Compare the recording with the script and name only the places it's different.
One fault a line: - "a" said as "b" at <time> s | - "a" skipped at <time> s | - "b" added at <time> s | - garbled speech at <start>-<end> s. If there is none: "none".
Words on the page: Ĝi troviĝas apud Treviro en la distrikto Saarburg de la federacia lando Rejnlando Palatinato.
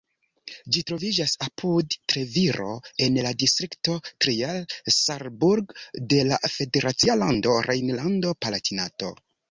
- "Trier" added at 4.3 s